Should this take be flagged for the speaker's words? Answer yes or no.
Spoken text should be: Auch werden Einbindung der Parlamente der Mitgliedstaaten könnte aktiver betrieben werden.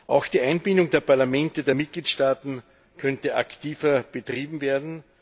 yes